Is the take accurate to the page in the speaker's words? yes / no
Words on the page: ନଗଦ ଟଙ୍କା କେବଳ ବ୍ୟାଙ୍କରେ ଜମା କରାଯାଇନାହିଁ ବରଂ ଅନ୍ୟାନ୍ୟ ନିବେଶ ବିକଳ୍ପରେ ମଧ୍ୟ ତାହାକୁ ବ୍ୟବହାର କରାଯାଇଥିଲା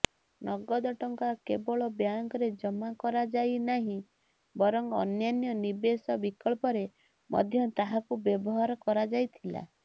yes